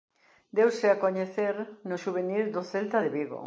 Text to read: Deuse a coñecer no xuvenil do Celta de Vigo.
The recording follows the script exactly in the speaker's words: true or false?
true